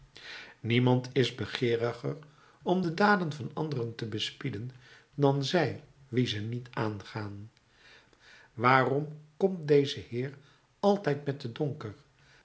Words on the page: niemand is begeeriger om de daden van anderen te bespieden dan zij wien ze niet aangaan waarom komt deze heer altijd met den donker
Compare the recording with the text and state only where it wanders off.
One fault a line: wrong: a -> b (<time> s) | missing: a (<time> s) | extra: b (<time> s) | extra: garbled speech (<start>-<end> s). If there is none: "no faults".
no faults